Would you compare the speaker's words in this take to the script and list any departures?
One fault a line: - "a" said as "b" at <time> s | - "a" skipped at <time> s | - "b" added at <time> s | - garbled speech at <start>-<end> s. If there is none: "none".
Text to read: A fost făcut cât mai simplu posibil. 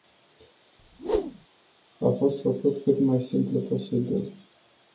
none